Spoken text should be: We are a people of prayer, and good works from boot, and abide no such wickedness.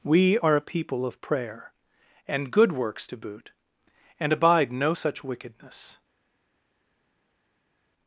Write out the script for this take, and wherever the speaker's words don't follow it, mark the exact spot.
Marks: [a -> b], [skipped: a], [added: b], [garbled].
We are a people of prayer, and good works [from -> to] boot, and abide no such wickedness.